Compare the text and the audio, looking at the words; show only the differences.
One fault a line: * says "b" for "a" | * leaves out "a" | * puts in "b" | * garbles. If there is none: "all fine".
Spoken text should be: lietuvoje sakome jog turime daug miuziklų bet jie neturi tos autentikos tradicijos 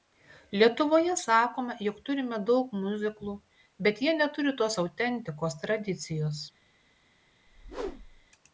all fine